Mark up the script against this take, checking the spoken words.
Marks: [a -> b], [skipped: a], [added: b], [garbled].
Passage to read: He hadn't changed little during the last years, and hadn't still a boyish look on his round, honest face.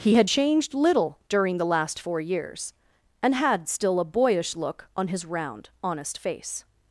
He [hadn't -> had] changed little during the last [added: four] years, and [hadn't -> had] still a boyish look on his round, honest face.